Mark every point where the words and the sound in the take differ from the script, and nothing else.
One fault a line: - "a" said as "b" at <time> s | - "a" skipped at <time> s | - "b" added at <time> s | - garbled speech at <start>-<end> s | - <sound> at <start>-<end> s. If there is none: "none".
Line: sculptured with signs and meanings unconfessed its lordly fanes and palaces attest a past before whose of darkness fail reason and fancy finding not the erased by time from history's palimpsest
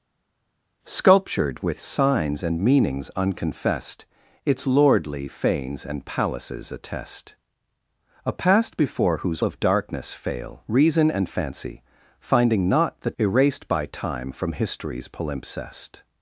none